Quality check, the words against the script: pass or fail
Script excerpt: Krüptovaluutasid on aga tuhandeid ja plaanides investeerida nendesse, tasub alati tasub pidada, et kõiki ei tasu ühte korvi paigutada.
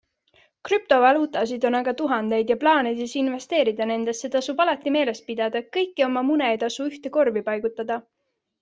fail